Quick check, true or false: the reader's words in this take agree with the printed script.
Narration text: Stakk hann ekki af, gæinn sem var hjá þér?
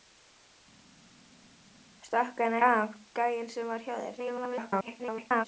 false